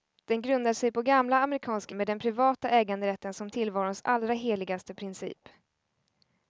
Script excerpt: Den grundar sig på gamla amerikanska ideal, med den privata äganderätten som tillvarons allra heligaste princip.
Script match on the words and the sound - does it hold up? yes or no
no